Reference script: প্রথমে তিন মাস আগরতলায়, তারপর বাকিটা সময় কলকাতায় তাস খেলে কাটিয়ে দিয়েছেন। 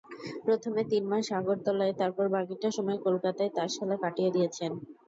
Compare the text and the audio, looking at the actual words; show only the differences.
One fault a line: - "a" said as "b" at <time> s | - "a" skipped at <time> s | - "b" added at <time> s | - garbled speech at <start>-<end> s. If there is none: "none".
none